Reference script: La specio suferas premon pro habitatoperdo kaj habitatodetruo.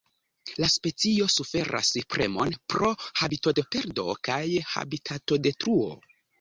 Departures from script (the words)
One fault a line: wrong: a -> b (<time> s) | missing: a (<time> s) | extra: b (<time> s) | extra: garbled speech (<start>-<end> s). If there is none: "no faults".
no faults